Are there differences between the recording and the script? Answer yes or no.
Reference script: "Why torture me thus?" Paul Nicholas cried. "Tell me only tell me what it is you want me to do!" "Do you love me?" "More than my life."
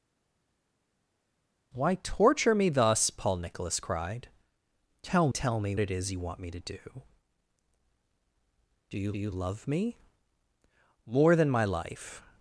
yes